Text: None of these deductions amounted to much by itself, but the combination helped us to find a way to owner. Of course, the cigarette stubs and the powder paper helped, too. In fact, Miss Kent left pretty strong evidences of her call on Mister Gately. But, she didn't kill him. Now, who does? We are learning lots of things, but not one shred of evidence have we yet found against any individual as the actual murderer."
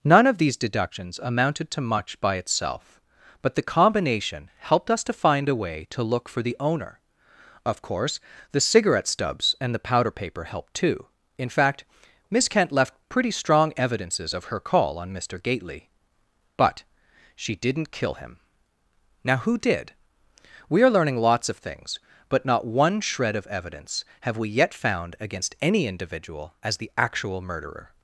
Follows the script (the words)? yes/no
no